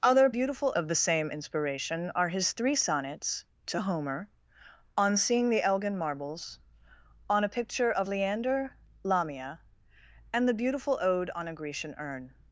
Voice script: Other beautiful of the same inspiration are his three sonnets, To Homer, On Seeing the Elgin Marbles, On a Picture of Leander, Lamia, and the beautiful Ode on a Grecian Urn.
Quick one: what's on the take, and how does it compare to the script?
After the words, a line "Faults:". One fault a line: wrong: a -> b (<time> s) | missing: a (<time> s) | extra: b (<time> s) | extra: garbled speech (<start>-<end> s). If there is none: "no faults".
Other beautiful of the same inspiration are his three sonnets, To Homer, On Seeing the Elgin Marbles, On a Picture of Leander, Lamia, and the beautiful Ode on a Grecian Urn.
Faults:
no faults